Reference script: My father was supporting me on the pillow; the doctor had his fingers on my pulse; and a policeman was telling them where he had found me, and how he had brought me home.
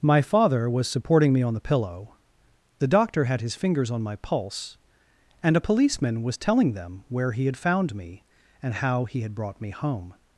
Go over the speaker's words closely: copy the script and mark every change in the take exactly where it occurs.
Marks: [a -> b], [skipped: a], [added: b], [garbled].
My father was supporting me on the pillow; the doctor had his fingers on my pulse; and a policeman was telling them where he had found me, and how he had brought me home.